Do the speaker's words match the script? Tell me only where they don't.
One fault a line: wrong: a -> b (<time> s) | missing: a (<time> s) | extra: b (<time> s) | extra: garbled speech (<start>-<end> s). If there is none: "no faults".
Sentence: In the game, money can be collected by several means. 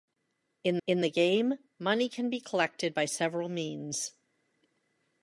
extra: in (0.9 s)